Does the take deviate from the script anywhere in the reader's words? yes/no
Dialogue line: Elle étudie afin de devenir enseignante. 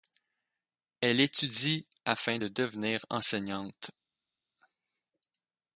no